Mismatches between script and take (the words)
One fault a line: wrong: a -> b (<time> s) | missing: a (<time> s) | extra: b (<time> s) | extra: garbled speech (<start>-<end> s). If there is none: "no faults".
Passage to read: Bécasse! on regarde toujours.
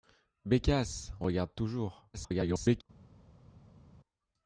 missing: on (1.1 s)
extra: garbled speech (2.1-2.8 s)